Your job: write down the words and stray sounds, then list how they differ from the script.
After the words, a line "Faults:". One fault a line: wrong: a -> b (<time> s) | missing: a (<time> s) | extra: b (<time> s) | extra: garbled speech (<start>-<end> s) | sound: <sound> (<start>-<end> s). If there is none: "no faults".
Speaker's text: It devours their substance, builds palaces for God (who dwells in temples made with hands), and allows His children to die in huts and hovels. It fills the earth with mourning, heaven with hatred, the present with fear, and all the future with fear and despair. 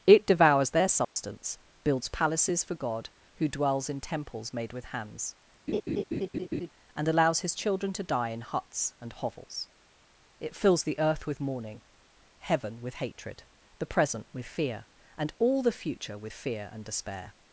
It devours their substance, builds palaces for God (who dwells in temples made with hands), and allows His children to die in huts and hovels. It fills the earth with mourning, heaven with hatred, the present with fear, and all the future with fear and despair.
Faults:
sound: dropout (1.0-1.2 s)
sound: laugh (5.7-6.7 s)